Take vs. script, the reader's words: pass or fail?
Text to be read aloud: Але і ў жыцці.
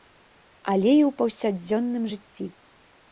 fail